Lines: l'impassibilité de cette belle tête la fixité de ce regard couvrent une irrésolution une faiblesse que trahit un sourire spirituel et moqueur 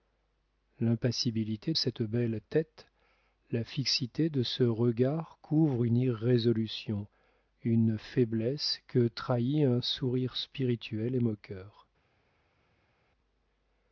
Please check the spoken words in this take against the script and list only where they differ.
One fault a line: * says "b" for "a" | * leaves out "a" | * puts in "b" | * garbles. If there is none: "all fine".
* leaves out "de"